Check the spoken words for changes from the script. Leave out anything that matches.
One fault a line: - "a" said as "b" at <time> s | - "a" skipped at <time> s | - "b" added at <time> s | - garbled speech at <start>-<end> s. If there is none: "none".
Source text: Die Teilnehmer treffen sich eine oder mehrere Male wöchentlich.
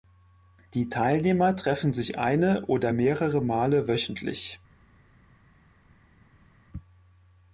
none